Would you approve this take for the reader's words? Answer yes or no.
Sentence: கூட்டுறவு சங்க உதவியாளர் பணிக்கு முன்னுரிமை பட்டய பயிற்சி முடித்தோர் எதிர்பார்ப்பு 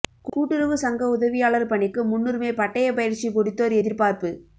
yes